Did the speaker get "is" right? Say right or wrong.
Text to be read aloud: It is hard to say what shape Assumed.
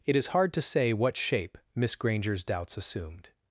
right